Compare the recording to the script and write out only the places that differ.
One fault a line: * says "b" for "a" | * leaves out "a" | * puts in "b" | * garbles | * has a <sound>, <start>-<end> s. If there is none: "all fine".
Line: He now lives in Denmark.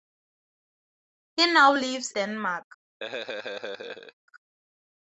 * leaves out "in"
* has a laugh, 3.0-4.1 s